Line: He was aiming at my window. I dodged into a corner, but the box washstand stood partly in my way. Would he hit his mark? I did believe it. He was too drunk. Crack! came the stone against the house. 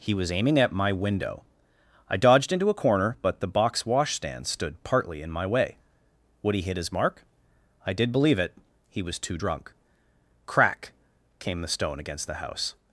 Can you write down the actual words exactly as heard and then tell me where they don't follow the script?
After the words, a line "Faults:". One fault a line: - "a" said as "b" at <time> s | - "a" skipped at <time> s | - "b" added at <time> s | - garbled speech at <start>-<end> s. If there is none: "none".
He was aiming at my window. I dodged into a corner, but the box washstand stood partly in my way. Would he hit his mark? I did believe it. He was too drunk. Crack! came the stone against the house.
Faults:
none